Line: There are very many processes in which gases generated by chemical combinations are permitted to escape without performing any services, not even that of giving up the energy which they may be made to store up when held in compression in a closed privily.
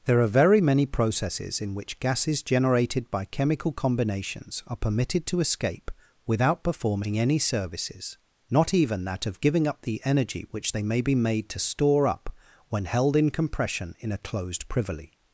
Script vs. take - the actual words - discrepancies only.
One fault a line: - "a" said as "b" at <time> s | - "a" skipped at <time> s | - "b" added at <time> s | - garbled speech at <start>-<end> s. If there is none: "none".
none